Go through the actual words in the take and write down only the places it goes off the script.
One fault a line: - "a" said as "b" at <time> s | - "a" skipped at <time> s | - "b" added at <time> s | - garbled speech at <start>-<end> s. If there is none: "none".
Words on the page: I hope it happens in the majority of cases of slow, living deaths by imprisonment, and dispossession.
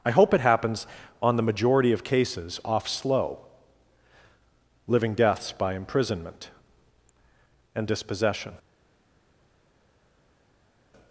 - "in" said as "on" at 1.2 s
- "of" said as "off" at 2.6 s